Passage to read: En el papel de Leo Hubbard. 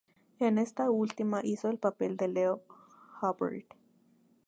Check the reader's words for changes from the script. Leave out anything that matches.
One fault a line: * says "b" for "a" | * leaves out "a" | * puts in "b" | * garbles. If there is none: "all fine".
* puts in "esta última hizo"